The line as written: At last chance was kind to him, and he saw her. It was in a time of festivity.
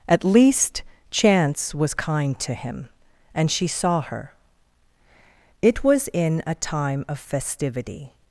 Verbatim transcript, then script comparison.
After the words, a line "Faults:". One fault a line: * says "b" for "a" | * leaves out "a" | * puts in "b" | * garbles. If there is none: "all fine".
At least chance was kind to him, and she saw her. It was in a time of festivity.
Faults:
* says "least" for "last"
* says "she" for "he"